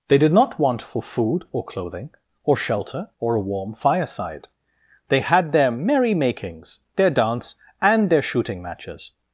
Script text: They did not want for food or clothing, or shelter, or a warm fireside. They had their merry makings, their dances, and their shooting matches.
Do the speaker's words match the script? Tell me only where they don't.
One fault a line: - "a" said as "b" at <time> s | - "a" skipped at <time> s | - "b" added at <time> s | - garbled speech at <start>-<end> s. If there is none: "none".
- "dances" said as "dance" at 7.1 s